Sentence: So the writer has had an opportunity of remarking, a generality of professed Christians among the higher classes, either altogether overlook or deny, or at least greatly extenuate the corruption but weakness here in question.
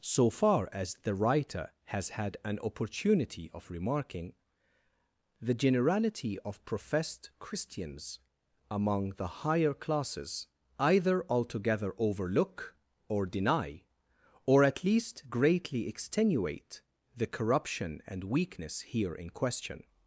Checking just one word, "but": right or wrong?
wrong